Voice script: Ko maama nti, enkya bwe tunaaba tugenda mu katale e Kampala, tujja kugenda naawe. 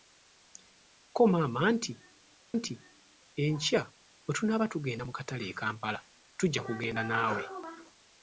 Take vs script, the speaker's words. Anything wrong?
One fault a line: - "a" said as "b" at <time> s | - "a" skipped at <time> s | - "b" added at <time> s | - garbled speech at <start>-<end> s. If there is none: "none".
- "nti" added at 2.6 s